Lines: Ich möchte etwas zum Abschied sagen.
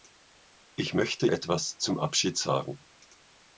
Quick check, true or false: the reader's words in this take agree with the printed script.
true